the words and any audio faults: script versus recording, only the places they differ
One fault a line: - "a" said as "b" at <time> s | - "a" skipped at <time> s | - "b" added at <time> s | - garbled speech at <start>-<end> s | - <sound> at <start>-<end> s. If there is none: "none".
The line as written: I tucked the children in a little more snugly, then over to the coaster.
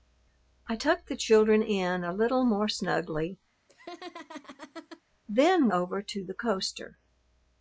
- laugh at 3.7-5.0 s